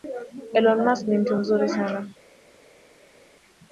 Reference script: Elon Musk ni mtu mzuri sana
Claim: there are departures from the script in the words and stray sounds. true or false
false